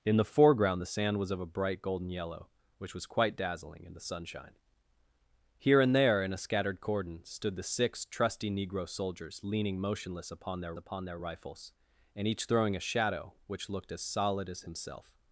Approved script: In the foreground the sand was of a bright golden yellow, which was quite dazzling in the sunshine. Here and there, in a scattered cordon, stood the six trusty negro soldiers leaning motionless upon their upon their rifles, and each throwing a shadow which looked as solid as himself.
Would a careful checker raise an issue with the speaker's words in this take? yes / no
no